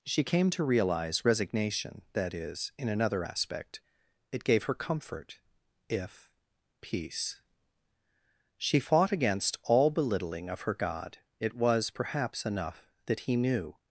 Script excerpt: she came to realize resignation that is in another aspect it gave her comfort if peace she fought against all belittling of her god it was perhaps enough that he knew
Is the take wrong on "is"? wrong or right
right